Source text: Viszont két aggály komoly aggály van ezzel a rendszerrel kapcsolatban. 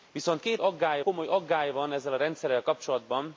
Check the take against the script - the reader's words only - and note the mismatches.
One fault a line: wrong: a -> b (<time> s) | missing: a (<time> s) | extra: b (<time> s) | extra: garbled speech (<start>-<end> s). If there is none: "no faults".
no faults